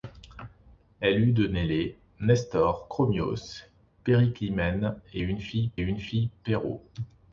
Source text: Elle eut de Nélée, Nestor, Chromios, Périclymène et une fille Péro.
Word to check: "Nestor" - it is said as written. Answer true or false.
true